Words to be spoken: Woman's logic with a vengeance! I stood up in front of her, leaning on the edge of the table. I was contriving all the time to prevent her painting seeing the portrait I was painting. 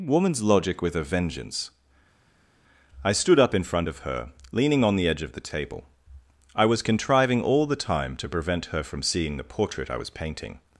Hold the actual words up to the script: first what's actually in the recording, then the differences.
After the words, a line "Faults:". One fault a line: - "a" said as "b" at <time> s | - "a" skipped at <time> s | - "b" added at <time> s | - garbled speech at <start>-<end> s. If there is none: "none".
Woman's logic with a vengeance! I stood up in front of her, leaning on the edge of the table. I was contriving all the time to prevent her from seeing the portrait I was painting.
Faults:
- "painting" said as "from" at 8.8 s